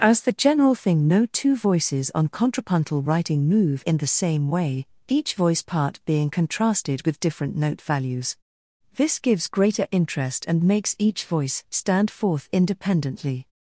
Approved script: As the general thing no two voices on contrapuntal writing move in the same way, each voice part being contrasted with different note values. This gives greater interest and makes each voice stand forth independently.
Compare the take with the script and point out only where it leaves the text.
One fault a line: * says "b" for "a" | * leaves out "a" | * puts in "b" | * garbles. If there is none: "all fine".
all fine